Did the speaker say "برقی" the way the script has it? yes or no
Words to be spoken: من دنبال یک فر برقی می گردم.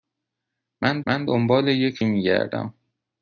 no